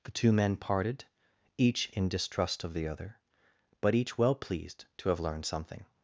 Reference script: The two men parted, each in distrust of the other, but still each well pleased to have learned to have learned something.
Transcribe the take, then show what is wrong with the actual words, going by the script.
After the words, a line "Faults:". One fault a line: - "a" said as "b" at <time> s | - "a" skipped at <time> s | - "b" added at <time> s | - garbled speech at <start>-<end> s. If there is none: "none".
The two men parted, each in distrust of the other, but each well pleased to have learned something.
Faults:
- "still" skipped at 4.0 s
- "to have learned" skipped at 5.5 s